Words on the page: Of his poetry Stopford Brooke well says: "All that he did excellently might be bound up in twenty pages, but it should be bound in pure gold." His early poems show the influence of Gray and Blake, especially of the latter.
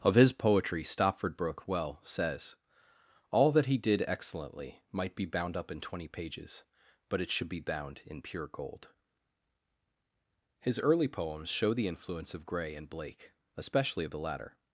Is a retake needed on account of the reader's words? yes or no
no